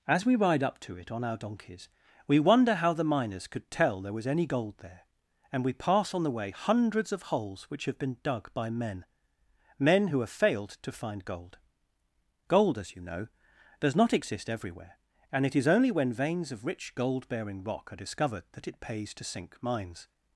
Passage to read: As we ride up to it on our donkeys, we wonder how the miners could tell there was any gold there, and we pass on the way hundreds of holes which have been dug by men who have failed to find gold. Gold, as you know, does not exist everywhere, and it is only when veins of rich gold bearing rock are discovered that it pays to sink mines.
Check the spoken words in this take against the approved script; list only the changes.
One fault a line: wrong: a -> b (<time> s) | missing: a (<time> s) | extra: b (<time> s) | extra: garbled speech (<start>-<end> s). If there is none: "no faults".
extra: men (9.8 s)